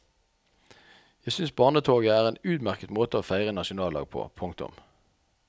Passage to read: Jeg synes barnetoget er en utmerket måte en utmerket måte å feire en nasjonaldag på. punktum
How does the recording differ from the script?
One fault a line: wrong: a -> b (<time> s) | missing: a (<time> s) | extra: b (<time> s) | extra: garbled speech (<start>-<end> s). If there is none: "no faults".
missing: en utmerket måte (3.2 s)